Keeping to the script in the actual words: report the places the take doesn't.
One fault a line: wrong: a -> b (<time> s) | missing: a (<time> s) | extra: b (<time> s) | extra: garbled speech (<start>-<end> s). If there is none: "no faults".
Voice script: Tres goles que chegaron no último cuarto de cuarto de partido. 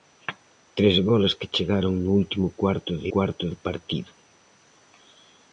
no faults